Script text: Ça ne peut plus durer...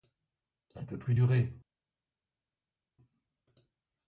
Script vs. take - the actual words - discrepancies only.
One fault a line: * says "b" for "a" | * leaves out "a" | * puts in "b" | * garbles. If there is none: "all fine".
all fine